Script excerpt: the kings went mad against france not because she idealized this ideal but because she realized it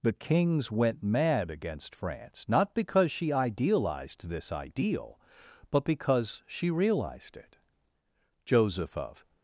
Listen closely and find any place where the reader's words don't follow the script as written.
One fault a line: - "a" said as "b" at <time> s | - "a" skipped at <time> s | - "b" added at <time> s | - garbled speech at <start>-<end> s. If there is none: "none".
- "joseph of" added at 8.5 s